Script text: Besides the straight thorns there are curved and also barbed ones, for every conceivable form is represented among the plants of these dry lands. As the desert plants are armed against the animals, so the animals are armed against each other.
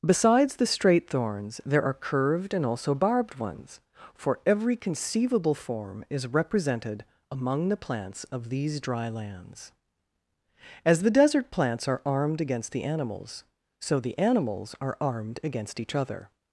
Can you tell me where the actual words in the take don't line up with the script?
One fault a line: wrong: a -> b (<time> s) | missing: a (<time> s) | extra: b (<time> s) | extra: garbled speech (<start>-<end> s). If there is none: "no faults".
no faults